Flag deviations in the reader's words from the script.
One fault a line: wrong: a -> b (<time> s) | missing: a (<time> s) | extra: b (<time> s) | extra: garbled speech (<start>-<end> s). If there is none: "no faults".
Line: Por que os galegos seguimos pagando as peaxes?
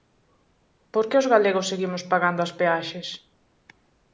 no faults